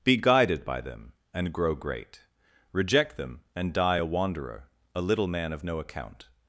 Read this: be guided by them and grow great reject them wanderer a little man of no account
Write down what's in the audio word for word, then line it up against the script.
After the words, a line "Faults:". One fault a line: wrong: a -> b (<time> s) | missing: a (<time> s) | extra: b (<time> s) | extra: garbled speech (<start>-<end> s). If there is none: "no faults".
be guided by them and grow great reject them and die a wanderer a little man of no account
Faults:
extra: and die a (3.5 s)